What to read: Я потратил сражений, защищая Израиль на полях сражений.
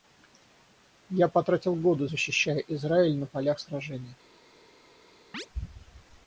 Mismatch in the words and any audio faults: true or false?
true